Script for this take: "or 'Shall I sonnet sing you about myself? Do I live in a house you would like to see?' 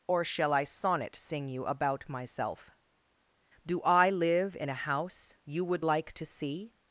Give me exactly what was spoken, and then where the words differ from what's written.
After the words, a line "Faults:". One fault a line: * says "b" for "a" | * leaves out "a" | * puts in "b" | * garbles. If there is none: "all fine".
"or 'Shall I sonnet sing you about myself? Do I live in a house you would like to see?'
Faults:
all fine